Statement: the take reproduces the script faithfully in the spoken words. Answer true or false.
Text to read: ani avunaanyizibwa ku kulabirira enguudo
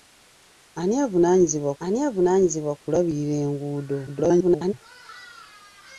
false